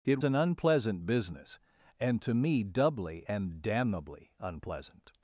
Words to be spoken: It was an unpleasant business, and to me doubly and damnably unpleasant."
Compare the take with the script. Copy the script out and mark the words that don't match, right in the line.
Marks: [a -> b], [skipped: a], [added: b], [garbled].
It [skipped: was] an unpleasant business, and to me doubly and damnably unpleasant."